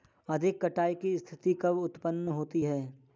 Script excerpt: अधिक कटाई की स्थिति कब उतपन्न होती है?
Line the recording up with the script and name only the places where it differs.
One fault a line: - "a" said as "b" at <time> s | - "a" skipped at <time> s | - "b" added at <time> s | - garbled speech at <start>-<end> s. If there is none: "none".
none